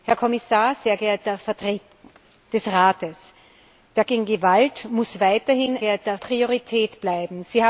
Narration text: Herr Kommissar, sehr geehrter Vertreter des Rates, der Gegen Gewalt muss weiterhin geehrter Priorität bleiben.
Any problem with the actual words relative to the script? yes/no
no